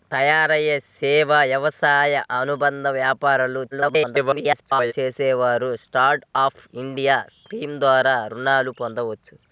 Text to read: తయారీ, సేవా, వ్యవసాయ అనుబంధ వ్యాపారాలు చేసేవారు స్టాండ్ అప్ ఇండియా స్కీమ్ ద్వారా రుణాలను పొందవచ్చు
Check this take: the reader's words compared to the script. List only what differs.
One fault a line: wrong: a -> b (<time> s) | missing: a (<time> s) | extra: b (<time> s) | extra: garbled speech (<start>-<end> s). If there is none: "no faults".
extra: garbled speech (3.7-4.9 s)